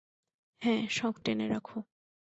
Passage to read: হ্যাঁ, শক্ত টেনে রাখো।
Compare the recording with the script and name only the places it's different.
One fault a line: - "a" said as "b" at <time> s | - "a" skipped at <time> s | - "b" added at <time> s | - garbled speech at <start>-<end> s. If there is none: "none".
none